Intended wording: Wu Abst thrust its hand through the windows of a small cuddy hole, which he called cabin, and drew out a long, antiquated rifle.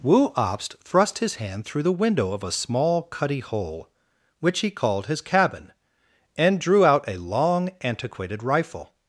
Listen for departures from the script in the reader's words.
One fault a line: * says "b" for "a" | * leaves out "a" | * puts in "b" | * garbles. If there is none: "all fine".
* says "his" for "its"
* says "window" for "windows"
* puts in "his"